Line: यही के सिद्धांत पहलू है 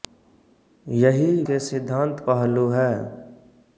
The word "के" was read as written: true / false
true